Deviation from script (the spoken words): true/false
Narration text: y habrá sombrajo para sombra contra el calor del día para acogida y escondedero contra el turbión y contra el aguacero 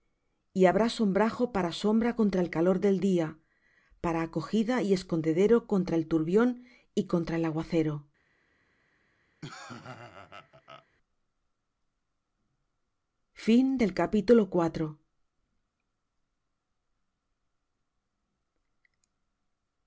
false